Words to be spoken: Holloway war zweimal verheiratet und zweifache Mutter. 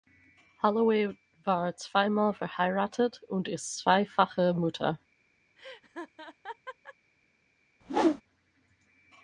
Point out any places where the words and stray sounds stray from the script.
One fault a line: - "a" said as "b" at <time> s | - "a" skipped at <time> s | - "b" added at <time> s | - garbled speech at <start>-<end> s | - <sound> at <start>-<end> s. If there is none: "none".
- "ist" added at 3.5 s
- laugh at 5.6-6.9 s
- whoosh at 7.8-8.2 s